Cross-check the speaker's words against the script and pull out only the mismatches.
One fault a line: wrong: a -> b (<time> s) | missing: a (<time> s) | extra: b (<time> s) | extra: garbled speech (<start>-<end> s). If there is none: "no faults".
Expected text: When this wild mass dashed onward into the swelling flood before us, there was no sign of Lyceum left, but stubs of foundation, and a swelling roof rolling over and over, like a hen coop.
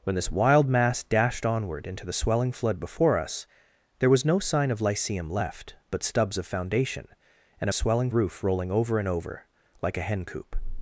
no faults